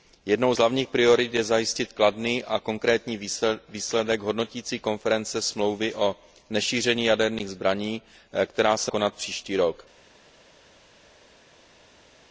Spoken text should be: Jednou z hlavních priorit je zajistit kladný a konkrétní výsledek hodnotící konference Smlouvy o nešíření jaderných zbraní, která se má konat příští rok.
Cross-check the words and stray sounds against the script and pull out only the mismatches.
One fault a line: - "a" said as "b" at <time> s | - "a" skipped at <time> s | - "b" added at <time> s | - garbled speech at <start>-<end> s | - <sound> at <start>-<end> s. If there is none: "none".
- "má" skipped at 8.9 s